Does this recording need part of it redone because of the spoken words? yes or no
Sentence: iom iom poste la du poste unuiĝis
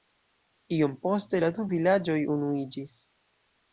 yes